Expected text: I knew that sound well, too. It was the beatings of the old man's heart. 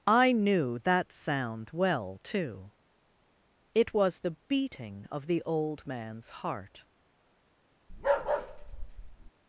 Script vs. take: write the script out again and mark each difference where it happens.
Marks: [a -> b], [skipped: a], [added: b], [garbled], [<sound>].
I knew that sound well, too. It was the [beatings -> beating] of the old man's heart. [bark]